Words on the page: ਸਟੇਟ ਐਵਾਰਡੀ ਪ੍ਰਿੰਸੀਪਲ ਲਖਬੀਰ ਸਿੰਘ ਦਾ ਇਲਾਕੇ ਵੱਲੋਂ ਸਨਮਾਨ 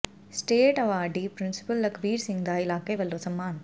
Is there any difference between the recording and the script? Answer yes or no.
no